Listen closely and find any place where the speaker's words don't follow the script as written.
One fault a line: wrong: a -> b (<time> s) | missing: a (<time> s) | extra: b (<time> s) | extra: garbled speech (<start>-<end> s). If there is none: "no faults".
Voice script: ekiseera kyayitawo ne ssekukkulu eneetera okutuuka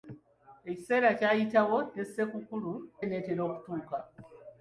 no faults